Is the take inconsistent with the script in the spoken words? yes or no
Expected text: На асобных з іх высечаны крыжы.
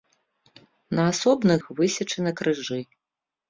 yes